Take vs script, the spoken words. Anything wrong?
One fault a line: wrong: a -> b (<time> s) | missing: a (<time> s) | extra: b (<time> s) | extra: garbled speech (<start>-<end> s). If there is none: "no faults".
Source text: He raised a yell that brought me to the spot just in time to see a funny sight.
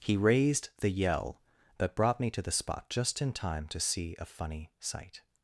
wrong: a -> the (0.8 s)